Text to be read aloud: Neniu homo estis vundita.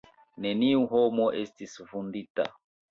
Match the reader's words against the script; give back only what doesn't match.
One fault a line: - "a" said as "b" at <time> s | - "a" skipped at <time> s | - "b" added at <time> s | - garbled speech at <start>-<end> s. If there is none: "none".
none